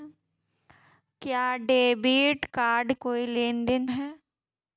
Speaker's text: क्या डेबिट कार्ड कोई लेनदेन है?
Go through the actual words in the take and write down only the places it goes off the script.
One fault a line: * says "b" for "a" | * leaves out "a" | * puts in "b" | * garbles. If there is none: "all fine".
all fine